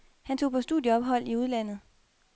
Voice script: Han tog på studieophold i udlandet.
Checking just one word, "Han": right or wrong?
right